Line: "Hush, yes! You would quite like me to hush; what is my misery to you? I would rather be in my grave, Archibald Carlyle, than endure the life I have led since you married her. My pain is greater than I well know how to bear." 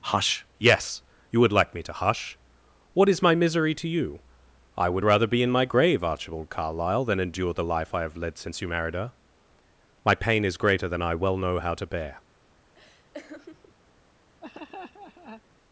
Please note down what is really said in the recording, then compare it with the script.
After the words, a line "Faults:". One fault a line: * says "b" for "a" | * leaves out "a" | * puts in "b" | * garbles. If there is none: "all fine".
"Hush, yes! You would like me to hush; what is my misery to you? I would rather be in my grave, Archibald Carlyle, than endure the life I have led since you married her. My pain is greater than I well know how to bear."
Faults:
* leaves out "quite"